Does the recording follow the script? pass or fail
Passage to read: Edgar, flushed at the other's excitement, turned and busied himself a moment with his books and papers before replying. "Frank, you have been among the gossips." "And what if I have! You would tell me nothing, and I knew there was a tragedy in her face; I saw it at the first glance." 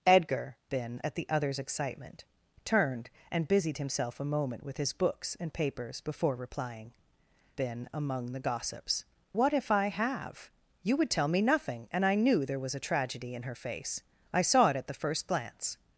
fail